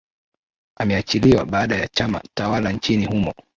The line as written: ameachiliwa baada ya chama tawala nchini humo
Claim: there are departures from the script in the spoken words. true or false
false